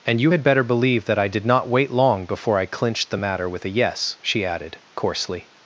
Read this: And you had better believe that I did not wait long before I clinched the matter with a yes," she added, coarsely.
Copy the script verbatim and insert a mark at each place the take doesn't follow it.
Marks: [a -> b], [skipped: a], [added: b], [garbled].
And you had better believe that I did not wait long before I clinched the matter with a yes," she added, coarsely.